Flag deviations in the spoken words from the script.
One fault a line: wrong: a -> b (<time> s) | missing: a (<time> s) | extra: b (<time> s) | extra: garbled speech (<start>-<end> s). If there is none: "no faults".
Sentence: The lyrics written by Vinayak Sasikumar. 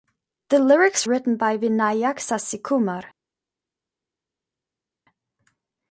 no faults